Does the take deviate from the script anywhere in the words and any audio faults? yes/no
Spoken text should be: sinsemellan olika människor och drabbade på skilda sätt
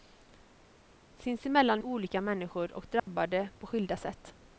yes